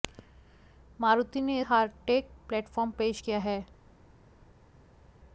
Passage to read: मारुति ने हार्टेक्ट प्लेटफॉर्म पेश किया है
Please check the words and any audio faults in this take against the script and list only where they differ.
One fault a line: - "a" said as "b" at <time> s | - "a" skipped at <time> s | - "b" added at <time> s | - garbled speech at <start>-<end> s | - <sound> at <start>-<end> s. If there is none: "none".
none